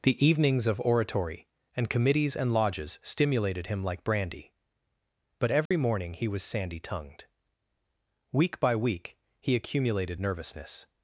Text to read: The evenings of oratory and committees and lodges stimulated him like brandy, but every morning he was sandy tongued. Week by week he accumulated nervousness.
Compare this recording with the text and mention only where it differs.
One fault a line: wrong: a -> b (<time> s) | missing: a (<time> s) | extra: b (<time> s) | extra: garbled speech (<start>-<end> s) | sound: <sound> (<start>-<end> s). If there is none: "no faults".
sound: dropout (5.7-5.7 s)